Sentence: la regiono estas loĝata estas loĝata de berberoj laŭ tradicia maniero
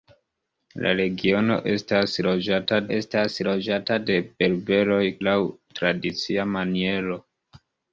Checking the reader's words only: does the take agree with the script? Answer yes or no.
yes